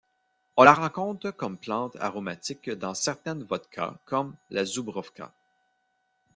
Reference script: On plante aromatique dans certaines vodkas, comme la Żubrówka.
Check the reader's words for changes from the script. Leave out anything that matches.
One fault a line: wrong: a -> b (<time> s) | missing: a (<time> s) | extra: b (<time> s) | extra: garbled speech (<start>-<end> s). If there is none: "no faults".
extra: la rencontre comme (0.6 s)